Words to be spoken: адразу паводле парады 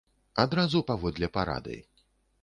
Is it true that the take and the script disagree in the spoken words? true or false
false